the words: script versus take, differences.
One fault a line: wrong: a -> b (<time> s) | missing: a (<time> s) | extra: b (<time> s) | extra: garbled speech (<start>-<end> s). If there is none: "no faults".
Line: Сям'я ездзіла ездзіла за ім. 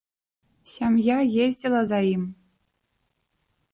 missing: ездзіла (1.8 s)